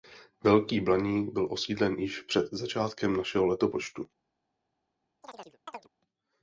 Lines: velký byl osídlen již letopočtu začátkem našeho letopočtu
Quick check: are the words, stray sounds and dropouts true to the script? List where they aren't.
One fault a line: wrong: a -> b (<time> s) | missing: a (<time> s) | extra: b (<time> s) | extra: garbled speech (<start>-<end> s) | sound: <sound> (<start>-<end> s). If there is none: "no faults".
extra: blaník (0.8 s)
wrong: letopočtu -> před (2.2 s)
sound: chirp (5.2-5.9 s)